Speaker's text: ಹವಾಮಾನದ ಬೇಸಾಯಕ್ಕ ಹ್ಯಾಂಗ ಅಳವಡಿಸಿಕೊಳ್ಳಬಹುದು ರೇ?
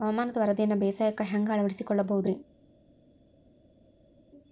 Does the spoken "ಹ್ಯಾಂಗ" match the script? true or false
true